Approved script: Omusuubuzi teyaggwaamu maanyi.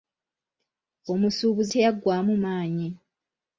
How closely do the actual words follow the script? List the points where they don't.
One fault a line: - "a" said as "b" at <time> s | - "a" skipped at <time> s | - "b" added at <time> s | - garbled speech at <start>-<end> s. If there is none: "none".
none